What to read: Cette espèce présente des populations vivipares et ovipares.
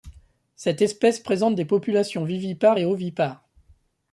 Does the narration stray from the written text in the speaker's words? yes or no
no